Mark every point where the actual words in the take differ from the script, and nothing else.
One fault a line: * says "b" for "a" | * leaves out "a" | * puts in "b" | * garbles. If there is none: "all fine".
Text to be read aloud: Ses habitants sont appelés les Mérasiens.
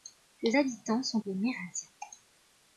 * leaves out "appelés"